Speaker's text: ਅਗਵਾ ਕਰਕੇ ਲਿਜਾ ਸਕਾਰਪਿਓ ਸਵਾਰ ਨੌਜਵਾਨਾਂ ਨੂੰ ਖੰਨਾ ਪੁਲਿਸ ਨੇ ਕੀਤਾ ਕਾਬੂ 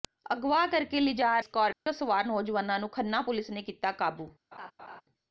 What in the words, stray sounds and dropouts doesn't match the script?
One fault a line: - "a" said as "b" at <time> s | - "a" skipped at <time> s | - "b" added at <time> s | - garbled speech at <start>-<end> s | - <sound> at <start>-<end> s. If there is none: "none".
- dropout at 1.7-1.9 s
- laugh at 4.5-5.0 s